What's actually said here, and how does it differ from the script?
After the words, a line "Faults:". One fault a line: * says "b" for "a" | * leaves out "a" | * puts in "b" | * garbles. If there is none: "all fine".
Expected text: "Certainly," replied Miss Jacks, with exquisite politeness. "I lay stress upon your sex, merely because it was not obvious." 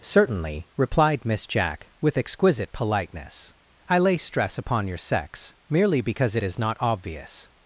"Certainly," replied Miss Jack, with exquisite politeness. "I lay stress upon your sex, merely because it is not obvious."
Faults:
* says "Jack" for "Jacks"
* says "is" for "was"